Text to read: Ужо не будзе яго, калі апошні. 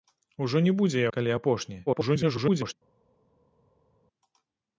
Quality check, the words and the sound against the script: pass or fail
fail